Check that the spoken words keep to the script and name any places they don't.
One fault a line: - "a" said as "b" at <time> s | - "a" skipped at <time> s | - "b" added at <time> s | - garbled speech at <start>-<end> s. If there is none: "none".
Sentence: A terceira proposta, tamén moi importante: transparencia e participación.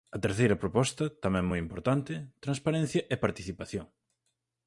none